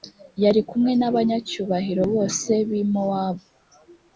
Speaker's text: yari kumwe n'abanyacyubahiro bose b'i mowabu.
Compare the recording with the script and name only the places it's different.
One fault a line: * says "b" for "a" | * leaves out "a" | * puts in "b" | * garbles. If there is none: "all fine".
all fine